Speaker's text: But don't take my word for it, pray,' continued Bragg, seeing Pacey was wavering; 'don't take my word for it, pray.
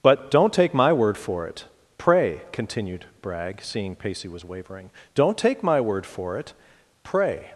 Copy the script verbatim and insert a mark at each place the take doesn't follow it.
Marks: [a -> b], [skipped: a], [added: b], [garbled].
But don't take my word for it, pray,' continued Bragg, seeing Pacey was wavering; 'don't take my word for it, pray.